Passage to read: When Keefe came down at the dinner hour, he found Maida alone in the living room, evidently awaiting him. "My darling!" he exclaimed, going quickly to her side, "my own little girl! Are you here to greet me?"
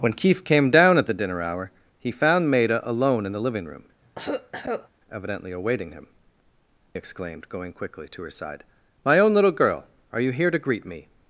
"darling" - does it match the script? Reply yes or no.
no